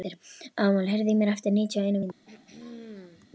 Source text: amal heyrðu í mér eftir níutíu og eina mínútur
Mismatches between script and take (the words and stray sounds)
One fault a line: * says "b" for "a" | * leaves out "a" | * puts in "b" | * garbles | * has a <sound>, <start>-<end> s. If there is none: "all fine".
* has a throat clearing, 2.3-3.3 s